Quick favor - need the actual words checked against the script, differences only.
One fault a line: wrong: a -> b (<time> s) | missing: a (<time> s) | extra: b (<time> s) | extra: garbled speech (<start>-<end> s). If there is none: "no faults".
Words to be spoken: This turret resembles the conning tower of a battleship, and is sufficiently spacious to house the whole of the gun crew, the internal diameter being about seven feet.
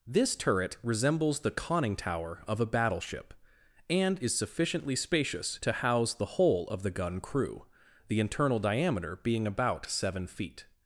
no faults